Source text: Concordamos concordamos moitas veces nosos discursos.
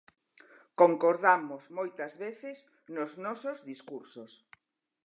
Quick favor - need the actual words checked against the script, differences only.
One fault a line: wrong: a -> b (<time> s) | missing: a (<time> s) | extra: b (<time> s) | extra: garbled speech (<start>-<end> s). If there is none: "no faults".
missing: concordamos (1.6 s)
extra: nos (3.0 s)